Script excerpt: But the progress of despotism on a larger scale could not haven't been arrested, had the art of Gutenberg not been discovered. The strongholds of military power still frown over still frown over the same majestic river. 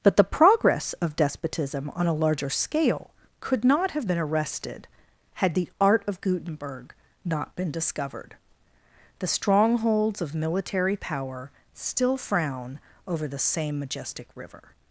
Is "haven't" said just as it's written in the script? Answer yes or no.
no